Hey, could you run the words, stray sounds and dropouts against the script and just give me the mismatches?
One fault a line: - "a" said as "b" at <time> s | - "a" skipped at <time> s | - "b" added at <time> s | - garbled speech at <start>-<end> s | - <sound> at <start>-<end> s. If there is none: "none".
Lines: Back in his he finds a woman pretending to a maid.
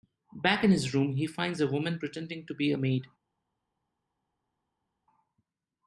- "room" added at 0.9 s
- "be" added at 2.5 s